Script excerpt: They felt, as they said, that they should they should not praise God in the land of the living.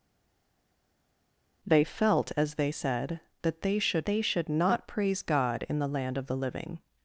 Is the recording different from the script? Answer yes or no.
no